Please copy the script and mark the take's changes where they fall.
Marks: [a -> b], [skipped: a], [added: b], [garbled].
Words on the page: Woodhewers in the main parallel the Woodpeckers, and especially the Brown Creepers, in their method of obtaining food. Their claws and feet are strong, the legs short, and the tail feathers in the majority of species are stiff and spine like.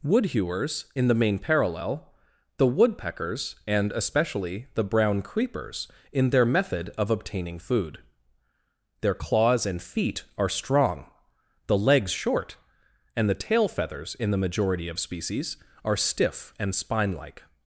Woodhewers in the main parallel the Woodpeckers, and especially the Brown Creepers, in their method of obtaining food. Their claws and feet are strong, the legs short, and the tail feathers in the majority of species are stiff and spine like.